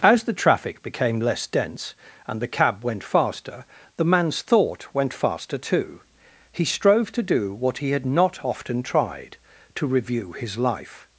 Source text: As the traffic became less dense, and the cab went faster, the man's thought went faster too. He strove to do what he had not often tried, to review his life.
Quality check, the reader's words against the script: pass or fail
pass